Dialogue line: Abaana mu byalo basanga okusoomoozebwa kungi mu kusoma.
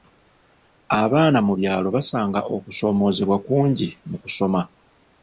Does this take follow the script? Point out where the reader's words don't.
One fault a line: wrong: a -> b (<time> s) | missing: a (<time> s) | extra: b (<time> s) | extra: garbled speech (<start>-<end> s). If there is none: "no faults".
no faults